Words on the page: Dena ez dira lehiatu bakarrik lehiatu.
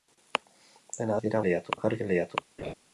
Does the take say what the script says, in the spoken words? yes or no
yes